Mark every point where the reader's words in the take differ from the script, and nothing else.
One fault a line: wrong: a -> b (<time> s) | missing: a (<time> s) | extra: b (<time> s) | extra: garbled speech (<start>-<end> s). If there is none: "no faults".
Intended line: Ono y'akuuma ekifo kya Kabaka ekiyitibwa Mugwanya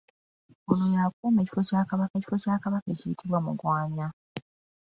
extra: ekifo kya Kabaka (2.2 s)